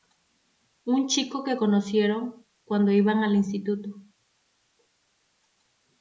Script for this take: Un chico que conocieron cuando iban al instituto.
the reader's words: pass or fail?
pass